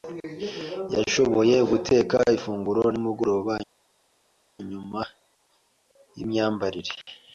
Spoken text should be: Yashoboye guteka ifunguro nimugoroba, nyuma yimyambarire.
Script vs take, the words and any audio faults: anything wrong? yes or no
no